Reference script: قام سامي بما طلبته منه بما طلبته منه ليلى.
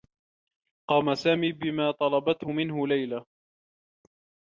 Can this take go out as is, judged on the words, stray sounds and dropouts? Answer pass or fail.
fail